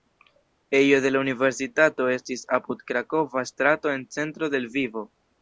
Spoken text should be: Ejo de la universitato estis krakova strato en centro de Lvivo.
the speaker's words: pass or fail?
fail